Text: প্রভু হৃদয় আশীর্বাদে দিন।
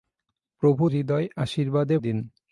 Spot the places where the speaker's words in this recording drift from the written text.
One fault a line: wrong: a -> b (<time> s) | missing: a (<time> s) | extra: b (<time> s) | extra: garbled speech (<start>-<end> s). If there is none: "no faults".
no faults